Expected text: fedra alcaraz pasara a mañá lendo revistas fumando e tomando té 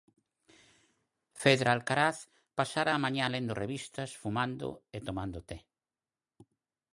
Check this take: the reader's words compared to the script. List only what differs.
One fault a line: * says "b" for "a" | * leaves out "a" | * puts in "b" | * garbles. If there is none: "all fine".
all fine